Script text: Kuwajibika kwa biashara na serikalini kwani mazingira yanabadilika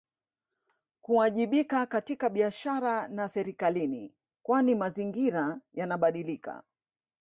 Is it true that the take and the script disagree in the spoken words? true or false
true